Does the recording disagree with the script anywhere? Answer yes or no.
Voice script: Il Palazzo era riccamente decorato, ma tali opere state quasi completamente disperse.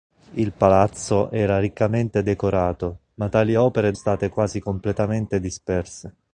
no